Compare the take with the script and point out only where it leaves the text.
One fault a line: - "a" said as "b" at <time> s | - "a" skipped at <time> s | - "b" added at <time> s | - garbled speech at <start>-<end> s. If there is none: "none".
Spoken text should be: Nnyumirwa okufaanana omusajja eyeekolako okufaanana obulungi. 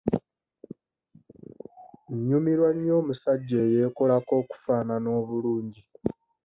- "okufaanana" said as "nnyo" at 2.7 s